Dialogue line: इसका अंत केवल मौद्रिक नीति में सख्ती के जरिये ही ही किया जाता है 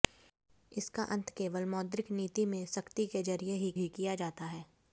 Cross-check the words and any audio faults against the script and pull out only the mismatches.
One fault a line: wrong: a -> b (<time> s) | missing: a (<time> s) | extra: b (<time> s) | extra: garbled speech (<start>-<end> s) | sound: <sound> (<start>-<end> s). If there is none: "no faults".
no faults